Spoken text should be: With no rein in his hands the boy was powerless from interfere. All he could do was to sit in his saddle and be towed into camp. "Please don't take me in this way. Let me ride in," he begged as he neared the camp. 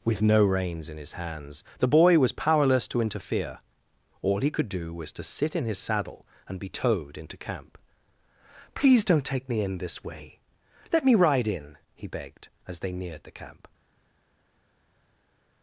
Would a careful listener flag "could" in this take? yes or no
no